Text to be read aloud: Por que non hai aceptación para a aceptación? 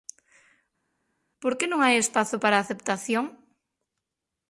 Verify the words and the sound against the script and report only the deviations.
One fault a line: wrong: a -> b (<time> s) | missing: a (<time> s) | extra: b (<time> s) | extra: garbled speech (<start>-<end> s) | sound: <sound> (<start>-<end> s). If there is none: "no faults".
wrong: aceptación -> espazo (2.0 s)